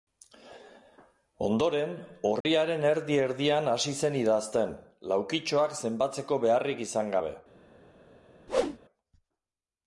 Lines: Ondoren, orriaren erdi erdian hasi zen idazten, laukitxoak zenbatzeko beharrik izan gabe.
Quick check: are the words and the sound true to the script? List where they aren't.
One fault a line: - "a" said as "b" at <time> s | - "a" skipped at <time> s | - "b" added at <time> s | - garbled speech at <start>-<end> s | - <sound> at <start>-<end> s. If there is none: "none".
- dropout at 2.4-2.5 s
- whoosh at 8.5-8.8 s